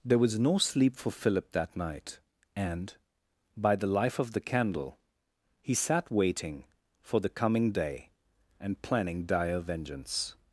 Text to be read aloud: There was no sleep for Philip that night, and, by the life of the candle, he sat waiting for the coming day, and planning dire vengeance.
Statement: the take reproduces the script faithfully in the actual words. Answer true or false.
true